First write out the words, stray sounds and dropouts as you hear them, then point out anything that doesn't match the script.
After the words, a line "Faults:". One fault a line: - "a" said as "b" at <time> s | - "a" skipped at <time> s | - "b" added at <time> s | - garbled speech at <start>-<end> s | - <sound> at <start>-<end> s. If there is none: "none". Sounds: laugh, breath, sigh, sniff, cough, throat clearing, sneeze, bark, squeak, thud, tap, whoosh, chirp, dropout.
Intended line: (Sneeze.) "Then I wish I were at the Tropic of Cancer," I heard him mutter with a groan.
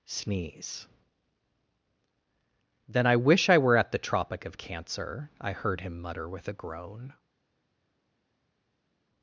(Sneeze.) "Then I wish I were at the Tropic of Cancer," I heard him mutter with a groan.
Faults:
none